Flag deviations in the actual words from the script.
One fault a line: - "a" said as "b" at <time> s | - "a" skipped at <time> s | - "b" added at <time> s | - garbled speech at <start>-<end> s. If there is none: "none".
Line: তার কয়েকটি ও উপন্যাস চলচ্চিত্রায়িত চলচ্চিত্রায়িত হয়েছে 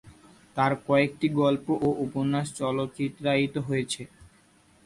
- "গল্প" added at 1.4 s
- "চলচ্চিত্রায়িত" skipped at 3.5 s